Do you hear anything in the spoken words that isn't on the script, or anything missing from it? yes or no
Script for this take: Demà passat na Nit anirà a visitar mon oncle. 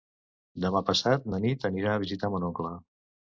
no